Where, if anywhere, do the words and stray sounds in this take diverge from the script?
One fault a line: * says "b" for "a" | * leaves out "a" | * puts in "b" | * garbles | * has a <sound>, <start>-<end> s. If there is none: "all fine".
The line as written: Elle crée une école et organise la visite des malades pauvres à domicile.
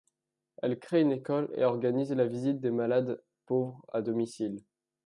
all fine